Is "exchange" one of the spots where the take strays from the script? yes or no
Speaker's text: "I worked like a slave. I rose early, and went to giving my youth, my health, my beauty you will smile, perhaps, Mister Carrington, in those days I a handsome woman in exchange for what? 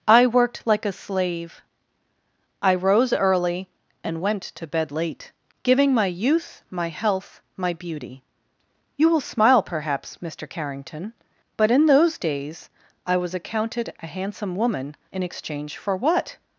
no